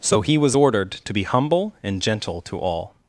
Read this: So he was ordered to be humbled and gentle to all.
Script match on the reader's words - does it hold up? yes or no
no